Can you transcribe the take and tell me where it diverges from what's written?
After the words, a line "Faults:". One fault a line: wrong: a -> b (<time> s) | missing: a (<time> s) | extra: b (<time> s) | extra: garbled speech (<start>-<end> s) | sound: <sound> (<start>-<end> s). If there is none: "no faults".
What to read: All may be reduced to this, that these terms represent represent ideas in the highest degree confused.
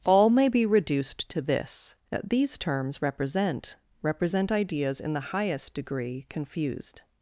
All may be reduced to this, that these terms represent represent ideas in the highest degree confused.
Faults:
no faults